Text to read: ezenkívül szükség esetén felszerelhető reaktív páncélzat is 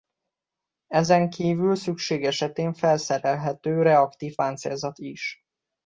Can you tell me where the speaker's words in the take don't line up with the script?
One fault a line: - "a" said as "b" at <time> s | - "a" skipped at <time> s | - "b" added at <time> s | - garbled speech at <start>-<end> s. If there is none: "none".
none